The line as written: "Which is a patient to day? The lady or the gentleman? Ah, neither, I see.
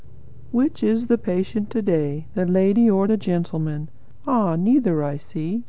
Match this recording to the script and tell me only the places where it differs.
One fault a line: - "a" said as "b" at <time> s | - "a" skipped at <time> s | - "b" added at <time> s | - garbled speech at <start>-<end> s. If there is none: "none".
- "a" said as "the" at 1.1 s